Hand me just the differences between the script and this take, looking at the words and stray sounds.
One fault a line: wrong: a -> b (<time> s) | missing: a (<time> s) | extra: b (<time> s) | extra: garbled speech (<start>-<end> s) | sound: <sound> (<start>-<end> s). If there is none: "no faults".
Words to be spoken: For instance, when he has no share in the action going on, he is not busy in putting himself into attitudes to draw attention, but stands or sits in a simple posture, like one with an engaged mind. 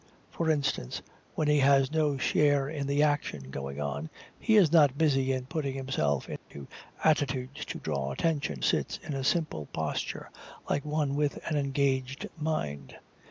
sound: dropout (6.4-6.5 s)
missing: but stands or (8.7 s)